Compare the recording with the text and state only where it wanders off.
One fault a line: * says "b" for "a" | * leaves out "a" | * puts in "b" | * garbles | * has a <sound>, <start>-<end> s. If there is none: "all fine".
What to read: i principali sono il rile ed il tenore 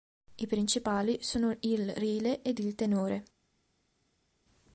all fine